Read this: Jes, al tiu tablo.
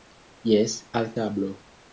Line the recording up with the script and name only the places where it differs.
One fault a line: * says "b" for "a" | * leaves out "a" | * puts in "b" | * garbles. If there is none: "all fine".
* leaves out "tiu"